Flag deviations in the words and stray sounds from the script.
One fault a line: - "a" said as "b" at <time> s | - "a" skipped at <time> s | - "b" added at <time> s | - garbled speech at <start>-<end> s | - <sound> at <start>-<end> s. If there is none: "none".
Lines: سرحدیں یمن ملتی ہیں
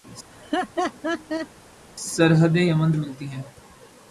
- laugh at 0.3-1.5 s